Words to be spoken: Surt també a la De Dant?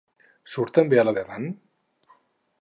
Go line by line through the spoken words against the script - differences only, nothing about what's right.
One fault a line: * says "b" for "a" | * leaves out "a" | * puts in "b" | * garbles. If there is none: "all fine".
all fine